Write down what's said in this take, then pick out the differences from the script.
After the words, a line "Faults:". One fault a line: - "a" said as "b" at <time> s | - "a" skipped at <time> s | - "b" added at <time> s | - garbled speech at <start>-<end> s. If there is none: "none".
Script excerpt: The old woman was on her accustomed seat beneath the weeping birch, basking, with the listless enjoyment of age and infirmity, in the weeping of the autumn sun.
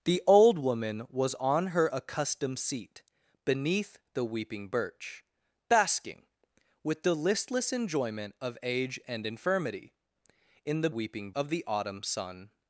The old woman was on her accustomed seat beneath the weeping birch, basking, with the listless enjoyment of age and infirmity, in the weeping of the autumn sun.
Faults:
none